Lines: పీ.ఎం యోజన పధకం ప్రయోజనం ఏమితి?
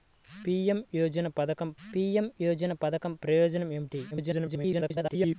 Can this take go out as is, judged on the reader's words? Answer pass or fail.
fail